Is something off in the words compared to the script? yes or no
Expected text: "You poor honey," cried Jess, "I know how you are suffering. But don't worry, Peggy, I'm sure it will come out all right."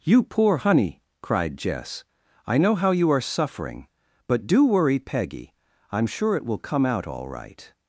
yes